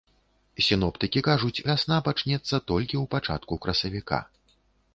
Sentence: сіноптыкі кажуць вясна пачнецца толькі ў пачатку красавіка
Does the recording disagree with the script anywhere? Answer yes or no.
no